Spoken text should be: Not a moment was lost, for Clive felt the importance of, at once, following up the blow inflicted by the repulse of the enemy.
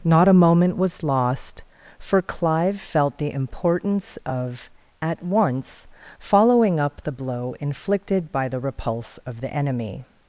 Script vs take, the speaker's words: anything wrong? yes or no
no